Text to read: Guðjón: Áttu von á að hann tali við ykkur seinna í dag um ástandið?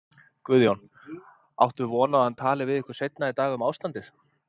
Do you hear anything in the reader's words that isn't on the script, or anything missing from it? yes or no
no